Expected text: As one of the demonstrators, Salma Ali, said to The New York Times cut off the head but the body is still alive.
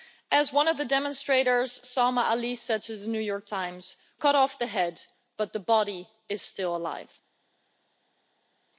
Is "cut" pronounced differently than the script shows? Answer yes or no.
no